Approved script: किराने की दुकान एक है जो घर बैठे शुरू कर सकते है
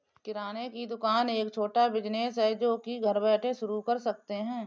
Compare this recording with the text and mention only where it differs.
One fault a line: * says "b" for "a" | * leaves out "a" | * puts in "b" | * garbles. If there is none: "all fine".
* puts in "छोटा बिज़नेस"
* puts in "की"